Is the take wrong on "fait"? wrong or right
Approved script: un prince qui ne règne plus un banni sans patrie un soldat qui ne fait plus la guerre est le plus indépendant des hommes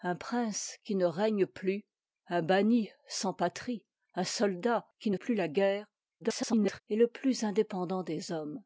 wrong